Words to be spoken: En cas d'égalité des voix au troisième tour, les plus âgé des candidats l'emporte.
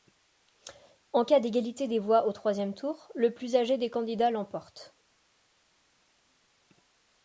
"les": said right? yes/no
no